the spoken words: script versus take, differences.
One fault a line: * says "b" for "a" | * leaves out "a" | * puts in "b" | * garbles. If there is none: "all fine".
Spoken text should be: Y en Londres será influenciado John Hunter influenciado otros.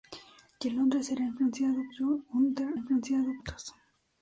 all fine